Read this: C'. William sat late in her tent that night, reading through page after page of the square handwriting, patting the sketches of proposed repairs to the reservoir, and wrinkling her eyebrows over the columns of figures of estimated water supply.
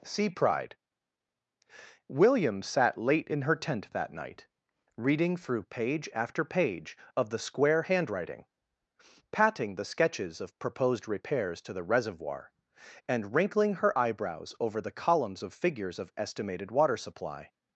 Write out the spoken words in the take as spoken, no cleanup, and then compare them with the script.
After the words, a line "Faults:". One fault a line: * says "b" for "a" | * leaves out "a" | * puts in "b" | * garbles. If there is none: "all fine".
Sea pride'. William sat late in her tent that night, reading through page after page of the square handwriting, patting the sketches of proposed repairs to the reservoir, and wrinkling her eyebrows over the columns of figures of estimated water supply.
Faults:
* says "Sea pride" for "C"